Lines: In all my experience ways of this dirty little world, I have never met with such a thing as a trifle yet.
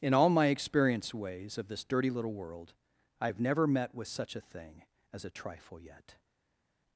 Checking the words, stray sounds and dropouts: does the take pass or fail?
pass